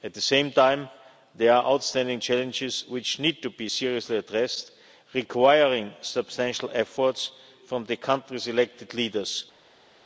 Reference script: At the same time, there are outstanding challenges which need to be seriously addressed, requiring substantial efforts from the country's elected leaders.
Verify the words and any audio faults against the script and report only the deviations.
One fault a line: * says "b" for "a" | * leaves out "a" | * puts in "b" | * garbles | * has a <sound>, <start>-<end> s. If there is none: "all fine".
all fine